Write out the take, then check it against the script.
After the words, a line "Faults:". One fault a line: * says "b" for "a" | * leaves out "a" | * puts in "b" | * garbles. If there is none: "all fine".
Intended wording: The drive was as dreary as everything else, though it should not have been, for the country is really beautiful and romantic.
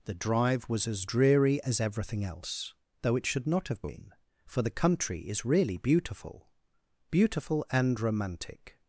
The drive was as dreary as everything else, though it should not have been, for the country is really beautiful beautiful and romantic.
Faults:
* puts in "beautiful"